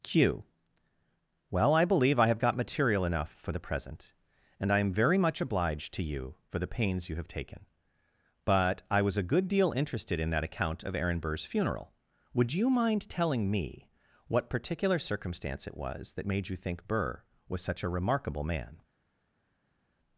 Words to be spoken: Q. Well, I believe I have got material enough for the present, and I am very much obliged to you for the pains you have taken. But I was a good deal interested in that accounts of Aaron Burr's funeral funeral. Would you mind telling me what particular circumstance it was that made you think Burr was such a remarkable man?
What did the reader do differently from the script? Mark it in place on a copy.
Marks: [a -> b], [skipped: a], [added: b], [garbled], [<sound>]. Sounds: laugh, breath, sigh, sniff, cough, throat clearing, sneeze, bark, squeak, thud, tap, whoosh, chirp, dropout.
Q. Well, I believe I have got material enough for the present, and I am very much obliged to you for the pains you have taken. But I was a good deal interested in that [accounts -> account] of Aaron Burr's funeral [skipped: funeral.] Would you mind telling me what particular circumstance it was that made you think Burr was such a remarkable man?